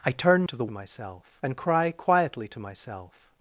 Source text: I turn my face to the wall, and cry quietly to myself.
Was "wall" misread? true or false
true